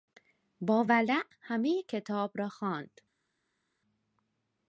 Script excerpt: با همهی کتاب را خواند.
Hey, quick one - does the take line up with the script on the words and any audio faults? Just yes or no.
no